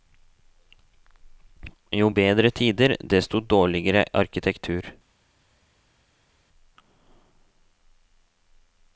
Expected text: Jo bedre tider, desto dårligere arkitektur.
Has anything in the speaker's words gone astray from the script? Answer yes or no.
no